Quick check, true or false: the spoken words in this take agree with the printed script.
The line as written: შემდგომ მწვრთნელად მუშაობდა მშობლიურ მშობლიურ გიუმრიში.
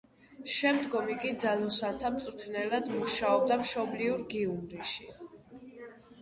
false